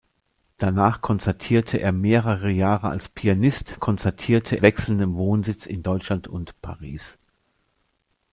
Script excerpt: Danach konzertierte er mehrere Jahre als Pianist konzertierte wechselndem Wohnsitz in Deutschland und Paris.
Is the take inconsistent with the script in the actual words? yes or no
no